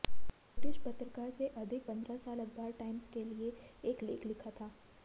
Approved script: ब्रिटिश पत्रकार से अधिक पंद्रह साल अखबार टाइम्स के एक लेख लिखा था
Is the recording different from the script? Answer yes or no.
yes